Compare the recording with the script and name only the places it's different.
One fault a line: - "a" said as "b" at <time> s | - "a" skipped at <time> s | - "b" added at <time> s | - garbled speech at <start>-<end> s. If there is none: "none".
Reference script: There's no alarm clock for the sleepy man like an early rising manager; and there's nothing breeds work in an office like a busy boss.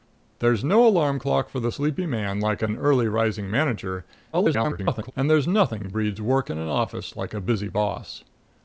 - garbled speech at 4.3-5.1 s